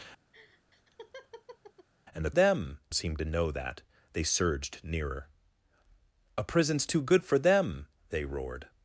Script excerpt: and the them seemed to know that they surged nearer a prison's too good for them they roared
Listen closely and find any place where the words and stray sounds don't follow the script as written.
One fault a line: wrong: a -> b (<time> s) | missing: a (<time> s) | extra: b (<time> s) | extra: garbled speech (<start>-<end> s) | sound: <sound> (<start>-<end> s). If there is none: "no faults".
sound: laugh (0.3-1.9 s)